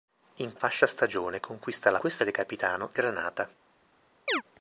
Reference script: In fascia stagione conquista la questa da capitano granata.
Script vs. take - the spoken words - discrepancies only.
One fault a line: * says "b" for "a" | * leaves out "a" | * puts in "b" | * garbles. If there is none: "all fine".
all fine